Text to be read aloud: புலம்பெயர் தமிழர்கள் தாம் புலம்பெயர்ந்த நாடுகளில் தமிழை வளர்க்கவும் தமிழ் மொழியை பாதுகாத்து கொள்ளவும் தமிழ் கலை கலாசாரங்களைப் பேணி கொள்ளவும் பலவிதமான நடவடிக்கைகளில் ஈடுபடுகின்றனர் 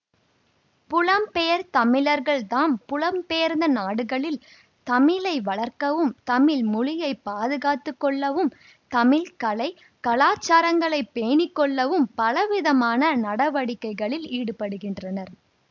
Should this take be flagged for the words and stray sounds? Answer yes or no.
no